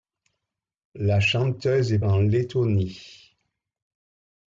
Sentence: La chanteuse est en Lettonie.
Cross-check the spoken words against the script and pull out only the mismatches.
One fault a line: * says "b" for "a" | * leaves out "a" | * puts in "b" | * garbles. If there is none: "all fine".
all fine